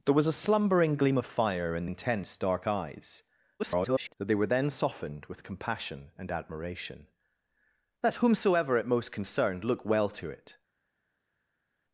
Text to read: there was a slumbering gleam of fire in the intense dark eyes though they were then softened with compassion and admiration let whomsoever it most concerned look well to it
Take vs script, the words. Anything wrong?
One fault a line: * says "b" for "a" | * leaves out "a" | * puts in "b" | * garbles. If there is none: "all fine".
* leaves out "the"
* garbles